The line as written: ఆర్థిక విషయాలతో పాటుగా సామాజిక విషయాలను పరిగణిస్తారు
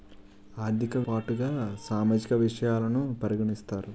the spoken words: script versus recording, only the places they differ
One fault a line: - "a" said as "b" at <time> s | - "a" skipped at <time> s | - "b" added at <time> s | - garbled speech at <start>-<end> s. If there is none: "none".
- "విషయాలతో" skipped at 1.0 s